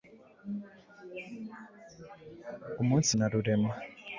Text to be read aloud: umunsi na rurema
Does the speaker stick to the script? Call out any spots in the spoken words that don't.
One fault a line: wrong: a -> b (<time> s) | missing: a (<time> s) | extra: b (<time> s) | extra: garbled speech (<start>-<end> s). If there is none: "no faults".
no faults